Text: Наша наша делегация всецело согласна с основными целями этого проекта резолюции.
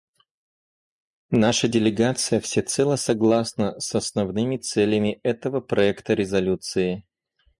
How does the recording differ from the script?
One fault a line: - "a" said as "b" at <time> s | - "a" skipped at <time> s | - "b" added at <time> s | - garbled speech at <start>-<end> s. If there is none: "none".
- "наша" skipped at 1.7 s